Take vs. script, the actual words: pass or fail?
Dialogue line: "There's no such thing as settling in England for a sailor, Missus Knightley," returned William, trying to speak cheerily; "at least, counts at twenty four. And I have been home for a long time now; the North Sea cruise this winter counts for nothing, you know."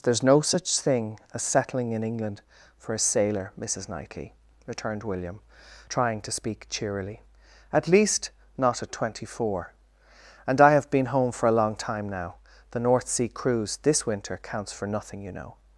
fail